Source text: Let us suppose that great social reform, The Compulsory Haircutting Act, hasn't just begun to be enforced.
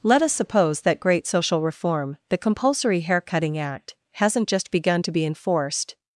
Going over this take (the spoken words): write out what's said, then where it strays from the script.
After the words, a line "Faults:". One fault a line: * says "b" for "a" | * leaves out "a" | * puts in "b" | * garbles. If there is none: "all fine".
Let us suppose that great social reform, The Compulsory Haircutting Act, hasn't just begun to be enforced.
Faults:
all fine